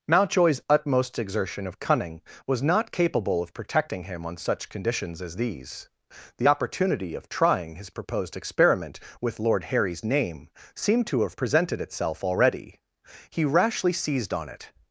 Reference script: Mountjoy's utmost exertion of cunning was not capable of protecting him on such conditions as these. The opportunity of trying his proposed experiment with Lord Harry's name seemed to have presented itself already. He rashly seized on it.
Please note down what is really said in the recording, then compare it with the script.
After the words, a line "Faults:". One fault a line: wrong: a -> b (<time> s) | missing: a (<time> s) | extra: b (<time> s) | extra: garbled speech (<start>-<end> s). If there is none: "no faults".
Mountjoy's utmost exertion of cunning was not capable of protecting him on such conditions as these. The opportunity of trying his proposed experiment with Lord Harry's name seemed to have presented itself already. He rashly seized on it.
Faults:
no faults